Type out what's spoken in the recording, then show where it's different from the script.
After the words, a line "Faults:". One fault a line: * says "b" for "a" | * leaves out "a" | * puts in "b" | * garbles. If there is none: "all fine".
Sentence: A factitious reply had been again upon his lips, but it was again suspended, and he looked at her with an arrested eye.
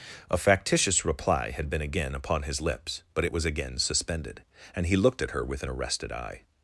A factitious reply had been again upon his lips, but it was again suspended, and he looked at her with an arrested eye.
Faults:
all fine